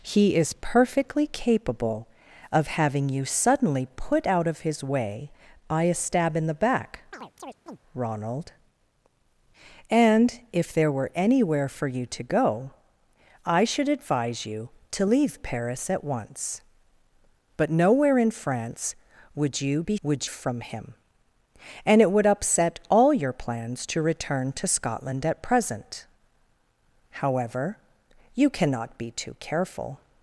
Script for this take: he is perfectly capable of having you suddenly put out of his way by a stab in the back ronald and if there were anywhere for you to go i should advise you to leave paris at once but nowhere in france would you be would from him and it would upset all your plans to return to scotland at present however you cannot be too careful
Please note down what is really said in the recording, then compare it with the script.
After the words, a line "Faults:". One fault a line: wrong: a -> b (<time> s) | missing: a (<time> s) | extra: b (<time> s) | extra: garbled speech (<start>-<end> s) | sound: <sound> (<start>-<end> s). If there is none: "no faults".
he is perfectly capable of having you suddenly put out of his way by a stab in the back ronald and if there were anywhere for you to go i should advise you to leave paris at once but nowhere in france would you be would from him and it would upset all your plans to return to scotland at present however you cannot be too careful
Faults:
sound: chirp (7.1-7.8 s)